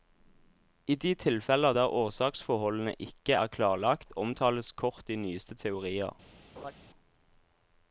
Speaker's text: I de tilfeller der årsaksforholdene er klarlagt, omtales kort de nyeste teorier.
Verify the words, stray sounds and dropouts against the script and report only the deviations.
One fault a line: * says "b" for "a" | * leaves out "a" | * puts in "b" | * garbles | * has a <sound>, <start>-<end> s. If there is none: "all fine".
* puts in "ikke"
* has a laugh, 6.6-6.7 s